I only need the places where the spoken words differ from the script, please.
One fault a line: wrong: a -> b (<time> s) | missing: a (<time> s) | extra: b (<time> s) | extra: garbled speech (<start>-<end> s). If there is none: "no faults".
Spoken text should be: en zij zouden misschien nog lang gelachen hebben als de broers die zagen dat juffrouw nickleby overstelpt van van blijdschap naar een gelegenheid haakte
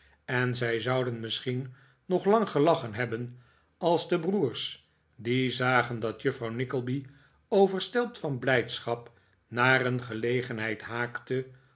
missing: van (8.4 s)